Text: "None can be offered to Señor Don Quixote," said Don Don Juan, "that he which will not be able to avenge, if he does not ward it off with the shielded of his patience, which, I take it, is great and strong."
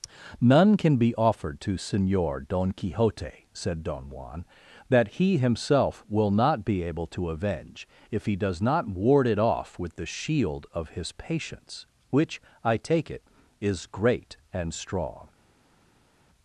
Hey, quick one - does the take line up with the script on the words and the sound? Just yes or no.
no